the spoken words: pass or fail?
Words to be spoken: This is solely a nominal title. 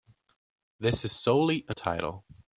fail